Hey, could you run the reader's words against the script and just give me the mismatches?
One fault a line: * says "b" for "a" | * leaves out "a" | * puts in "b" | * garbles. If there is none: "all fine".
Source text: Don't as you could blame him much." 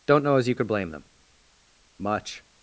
* puts in "know"
* says "them" for "him"